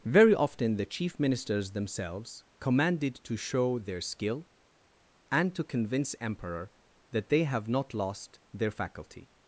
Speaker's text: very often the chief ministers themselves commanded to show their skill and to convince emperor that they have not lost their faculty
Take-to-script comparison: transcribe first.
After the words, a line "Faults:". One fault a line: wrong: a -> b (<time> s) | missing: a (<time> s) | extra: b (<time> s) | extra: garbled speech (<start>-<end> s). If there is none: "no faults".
very often the chief ministers themselves commanded to show their skill and to convince emperor that they have not lost their faculty
Faults:
no faults